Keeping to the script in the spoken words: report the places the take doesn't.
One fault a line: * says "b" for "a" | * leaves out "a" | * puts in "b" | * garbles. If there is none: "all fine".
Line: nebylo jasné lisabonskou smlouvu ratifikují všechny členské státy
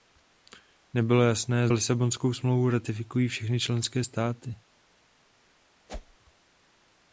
all fine